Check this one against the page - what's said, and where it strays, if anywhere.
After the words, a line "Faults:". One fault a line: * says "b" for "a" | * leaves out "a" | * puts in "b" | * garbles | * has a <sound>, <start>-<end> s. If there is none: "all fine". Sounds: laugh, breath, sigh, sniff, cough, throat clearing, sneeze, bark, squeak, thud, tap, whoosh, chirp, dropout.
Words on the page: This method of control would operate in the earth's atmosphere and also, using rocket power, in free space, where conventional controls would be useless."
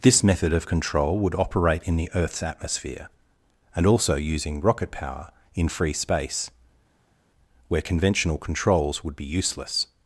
This method of control would operate in the earth's atmosphere and also, using rocket power, in free space, where conventional controls would be useless."
Faults:
all fine